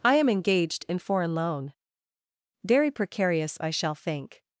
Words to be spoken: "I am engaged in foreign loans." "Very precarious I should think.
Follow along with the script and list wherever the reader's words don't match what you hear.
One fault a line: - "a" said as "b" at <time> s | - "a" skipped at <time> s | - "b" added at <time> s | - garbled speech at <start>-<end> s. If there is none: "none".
- "loans" said as "loan" at 1.4 s
- "should" said as "shall" at 3.7 s